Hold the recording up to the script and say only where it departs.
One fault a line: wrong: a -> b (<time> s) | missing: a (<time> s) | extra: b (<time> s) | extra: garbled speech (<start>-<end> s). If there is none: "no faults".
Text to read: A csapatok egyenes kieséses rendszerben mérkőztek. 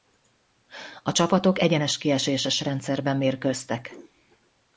no faults